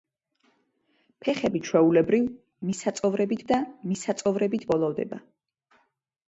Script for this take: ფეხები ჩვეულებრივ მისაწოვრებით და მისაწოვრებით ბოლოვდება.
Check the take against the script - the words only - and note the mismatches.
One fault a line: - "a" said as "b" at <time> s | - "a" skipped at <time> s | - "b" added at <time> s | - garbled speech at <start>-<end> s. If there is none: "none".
none